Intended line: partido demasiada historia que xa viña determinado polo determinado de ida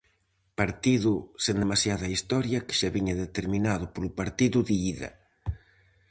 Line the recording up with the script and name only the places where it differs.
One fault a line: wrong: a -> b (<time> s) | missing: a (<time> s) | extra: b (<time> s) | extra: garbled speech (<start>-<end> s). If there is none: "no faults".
extra: sen (1.4 s)
wrong: determinado -> partido (4.2 s)